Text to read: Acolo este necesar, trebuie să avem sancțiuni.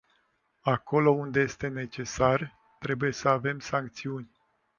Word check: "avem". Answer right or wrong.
right